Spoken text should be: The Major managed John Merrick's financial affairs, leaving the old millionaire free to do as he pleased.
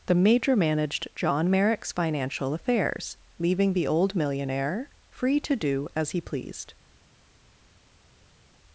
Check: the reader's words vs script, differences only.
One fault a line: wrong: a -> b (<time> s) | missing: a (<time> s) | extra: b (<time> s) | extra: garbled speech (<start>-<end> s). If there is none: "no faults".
no faults